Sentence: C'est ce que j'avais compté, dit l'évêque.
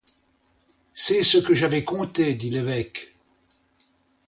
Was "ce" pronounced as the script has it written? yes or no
yes